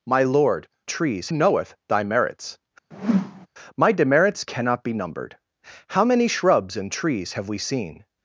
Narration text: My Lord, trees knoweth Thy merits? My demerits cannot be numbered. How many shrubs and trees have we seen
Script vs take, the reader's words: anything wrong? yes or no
no